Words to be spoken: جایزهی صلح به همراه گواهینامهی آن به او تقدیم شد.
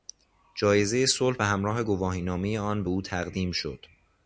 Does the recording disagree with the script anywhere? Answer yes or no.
no